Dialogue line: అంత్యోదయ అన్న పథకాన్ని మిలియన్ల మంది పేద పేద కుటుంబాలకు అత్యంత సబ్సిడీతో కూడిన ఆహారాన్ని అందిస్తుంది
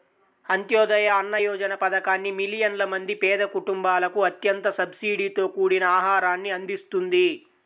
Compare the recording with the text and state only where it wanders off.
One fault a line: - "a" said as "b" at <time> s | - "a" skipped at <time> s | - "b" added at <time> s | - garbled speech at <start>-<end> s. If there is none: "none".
- "యోజన" added at 1.4 s
- "పేద" skipped at 3.4 s